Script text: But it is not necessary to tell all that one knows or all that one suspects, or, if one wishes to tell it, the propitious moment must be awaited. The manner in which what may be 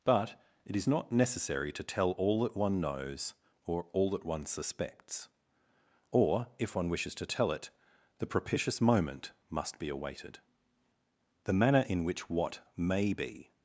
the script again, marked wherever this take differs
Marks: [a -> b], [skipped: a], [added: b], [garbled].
But it is not necessary to tell all that one knows or all that one suspects, or, if one wishes to tell it, the propitious moment must be awaited. The manner in which what may be